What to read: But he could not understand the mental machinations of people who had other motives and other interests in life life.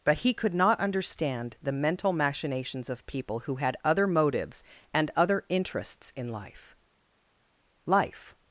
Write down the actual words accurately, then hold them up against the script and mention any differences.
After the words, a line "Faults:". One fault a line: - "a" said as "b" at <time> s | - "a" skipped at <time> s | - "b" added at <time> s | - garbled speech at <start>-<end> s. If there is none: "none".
But he could not understand the mental machinations of people who had other motives and other interests in life life.
Faults:
none